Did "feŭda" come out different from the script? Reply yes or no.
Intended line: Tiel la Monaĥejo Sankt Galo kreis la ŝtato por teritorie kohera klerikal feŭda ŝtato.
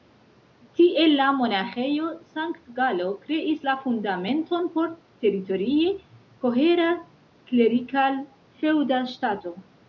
no